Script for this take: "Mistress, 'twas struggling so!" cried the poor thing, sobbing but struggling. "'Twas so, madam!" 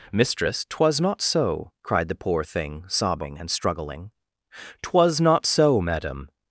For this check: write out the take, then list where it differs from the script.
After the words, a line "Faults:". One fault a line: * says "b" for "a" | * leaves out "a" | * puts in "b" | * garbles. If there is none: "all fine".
"Mistress, 'twas not so!" cried the poor thing, sobbing and struggling. "'Twas not so, madam!"
Faults:
* says "not" for "struggling"
* says "and" for "but"
* puts in "not"